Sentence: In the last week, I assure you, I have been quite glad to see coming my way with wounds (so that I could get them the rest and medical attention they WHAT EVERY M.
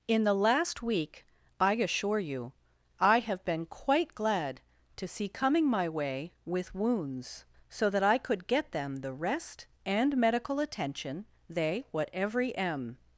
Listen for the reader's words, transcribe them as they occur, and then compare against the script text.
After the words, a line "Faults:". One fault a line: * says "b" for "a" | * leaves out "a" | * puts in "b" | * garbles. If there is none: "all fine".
In the last week, I assure you, I have been quite glad to see coming my way with wounds (so that I could get them the rest and medical attention they WHAT EVERY M.
Faults:
all fine